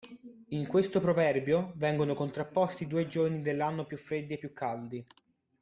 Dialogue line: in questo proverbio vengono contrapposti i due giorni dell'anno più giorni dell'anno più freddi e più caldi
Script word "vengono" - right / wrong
right